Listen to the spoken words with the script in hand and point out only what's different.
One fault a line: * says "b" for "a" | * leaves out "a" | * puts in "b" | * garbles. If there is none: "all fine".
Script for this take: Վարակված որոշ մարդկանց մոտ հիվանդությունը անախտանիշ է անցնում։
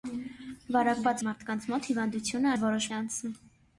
* leaves out "որոշ"
* says "որոշ" for "անախտանիշ"